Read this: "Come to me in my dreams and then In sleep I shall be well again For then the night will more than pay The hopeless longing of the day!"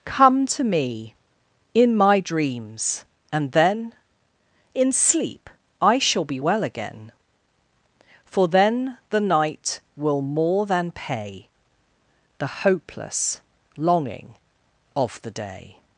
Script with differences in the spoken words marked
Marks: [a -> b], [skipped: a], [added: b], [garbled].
"Come to me in my dreams and then In sleep I shall be well again For then the night will more than pay The hopeless longing of the day!"